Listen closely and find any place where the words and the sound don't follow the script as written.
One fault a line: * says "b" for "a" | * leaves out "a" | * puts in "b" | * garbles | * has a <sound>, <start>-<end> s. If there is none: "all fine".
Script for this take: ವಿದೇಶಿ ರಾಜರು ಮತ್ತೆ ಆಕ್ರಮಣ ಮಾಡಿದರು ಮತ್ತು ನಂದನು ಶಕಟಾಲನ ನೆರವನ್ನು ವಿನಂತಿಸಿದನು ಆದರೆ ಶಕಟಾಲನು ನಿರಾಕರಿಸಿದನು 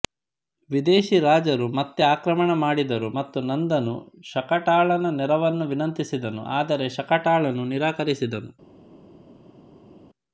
all fine